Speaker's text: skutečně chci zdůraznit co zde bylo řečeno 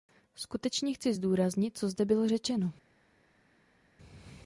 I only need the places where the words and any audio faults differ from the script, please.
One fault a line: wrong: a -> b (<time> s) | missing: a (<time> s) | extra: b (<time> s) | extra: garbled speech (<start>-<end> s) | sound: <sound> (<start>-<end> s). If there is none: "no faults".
no faults